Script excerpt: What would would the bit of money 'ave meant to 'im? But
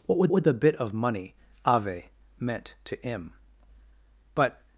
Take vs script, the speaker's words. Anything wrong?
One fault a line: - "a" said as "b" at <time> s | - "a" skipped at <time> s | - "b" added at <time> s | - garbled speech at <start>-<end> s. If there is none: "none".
none